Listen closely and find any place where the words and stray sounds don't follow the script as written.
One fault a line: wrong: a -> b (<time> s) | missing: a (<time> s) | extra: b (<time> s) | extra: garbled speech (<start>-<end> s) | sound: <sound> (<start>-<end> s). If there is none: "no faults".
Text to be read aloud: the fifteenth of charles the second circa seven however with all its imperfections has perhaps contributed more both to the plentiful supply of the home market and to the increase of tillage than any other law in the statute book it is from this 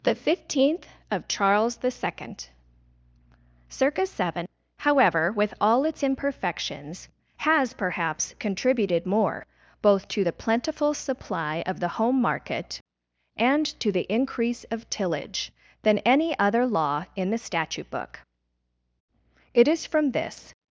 no faults